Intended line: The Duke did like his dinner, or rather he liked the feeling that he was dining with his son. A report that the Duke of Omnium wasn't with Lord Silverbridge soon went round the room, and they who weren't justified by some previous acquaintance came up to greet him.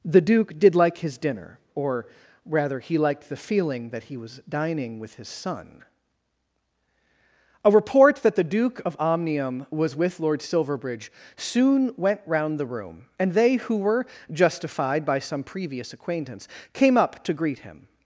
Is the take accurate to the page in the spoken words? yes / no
no